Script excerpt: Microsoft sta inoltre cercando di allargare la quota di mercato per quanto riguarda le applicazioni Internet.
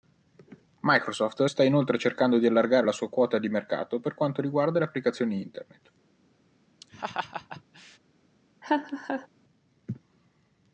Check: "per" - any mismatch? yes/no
no